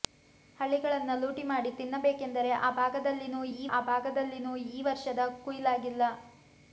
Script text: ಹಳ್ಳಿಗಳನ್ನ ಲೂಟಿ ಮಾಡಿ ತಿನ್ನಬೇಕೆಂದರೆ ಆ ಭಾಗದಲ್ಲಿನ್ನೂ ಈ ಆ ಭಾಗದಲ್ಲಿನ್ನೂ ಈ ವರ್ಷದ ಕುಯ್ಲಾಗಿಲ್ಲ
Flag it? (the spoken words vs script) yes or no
no